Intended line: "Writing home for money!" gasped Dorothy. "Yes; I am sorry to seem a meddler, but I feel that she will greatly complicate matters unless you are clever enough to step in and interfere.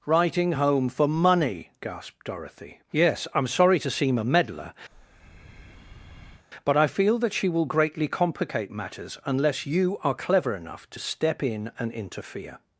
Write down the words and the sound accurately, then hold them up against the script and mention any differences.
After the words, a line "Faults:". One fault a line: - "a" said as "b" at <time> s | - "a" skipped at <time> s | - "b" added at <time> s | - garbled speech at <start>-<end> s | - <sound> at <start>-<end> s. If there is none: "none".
"Writing home for money!" gasped Dorothy. "Yes; I am sorry to seem a meddler, but I feel that she will greatly complicate matters unless you are clever enough to step in and interfere.
Faults:
- breath at 4.9-6.5 s